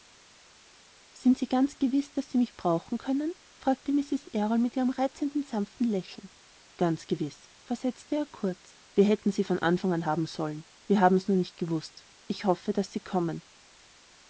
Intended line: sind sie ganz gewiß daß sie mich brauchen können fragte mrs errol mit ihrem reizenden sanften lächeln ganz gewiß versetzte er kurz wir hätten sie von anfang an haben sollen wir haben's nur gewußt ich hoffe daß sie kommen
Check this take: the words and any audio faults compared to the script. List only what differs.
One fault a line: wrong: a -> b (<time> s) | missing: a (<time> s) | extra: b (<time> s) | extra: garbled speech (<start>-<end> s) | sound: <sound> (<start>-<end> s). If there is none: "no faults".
extra: nicht (11.4 s)